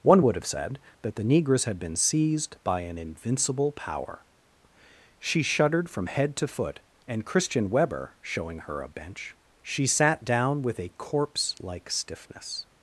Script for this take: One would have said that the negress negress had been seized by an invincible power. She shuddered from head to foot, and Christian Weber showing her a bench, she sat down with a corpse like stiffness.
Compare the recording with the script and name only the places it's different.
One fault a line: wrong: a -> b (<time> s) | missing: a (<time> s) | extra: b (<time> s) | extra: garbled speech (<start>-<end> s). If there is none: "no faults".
missing: negress (1.6 s)